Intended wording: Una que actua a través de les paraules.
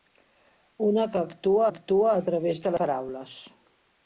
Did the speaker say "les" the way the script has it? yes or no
no